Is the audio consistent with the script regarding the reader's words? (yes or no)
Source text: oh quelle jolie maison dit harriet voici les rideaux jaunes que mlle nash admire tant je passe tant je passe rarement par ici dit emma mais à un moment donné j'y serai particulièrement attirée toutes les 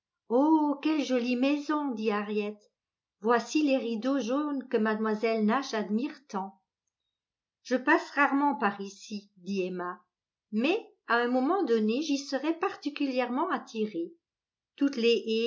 no